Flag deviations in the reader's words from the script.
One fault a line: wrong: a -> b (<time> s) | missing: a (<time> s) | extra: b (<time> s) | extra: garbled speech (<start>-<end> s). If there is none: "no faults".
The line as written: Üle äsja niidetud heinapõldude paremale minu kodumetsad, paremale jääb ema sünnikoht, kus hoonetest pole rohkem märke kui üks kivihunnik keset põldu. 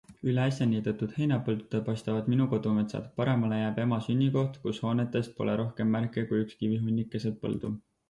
wrong: paremale -> paistavad (1.9 s)